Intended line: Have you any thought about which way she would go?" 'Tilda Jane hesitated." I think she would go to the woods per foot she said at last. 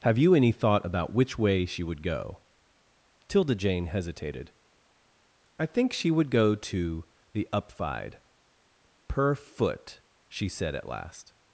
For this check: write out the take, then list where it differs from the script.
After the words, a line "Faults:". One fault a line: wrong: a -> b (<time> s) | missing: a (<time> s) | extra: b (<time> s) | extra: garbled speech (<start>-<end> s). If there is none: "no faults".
Have you any thought about which way she would go?" 'Tilda Jane hesitated." I think she would go to the upfide per foot she said at last.
Faults:
wrong: woods -> upfide (7.5 s)